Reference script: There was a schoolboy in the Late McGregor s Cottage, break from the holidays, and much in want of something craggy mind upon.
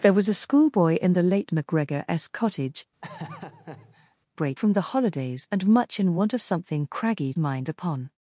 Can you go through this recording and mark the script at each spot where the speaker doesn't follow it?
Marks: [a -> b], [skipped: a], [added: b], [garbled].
There was a schoolboy in the Late McGregor s Cottage, break from the holidays, and much in want of something craggy mind upon.